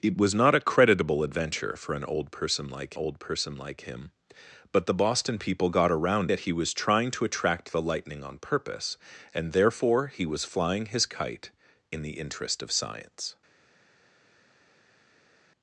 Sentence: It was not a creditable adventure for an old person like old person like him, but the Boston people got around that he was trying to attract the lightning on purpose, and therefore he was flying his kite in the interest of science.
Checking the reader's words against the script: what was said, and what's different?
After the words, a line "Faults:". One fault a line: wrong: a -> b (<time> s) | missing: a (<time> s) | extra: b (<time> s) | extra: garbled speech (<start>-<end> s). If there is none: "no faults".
It was not a creditable adventure for an old person like old person like him, but the Boston people got around that he was trying to attract the lightning on purpose, and therefore he was flying his kite in the interest of science.
Faults:
no faults